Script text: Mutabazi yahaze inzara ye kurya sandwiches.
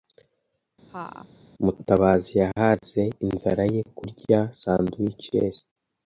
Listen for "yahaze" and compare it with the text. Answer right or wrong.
right